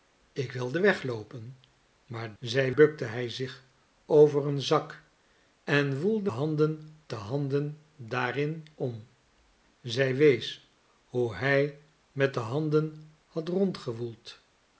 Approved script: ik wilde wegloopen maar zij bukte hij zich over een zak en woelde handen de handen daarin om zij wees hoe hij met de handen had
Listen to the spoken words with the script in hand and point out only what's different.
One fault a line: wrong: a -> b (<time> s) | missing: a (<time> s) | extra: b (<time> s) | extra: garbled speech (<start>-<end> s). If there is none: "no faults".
no faults